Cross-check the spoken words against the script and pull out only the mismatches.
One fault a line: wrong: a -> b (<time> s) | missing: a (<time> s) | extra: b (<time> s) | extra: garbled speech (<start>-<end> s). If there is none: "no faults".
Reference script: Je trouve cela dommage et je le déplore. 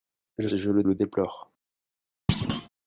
missing: trouve cela dommage (0.5 s)
extra: le (0.8 s)